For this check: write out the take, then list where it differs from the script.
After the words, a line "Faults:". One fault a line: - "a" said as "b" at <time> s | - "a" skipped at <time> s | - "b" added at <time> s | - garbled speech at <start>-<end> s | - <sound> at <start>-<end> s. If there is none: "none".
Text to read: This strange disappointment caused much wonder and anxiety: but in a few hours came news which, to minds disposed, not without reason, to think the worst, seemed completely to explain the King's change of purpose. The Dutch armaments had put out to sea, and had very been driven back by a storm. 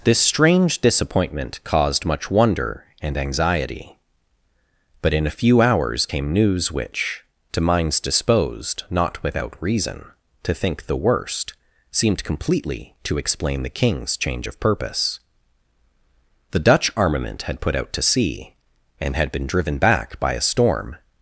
This strange disappointment caused much wonder and anxiety: but in a few hours came news which, to minds disposed, not without reason, to think the worst, seemed completely to explain the King's change of purpose. The Dutch armament had put out to sea, and had been driven back by a storm.
Faults:
- "armaments" said as "armament" at 17.0 s
- "very" skipped at 19.3 s